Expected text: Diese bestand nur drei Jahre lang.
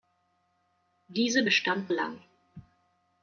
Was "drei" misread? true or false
true